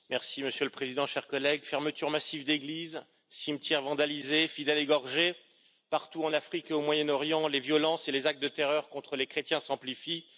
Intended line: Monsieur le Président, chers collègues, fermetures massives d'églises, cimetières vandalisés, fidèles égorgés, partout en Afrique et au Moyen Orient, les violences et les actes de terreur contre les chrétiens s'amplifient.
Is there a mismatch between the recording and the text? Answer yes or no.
no